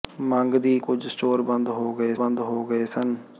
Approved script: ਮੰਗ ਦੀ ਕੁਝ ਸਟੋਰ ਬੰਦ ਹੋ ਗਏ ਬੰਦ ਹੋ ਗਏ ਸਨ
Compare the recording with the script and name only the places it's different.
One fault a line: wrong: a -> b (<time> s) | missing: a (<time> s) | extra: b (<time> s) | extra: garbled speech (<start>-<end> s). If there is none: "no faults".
no faults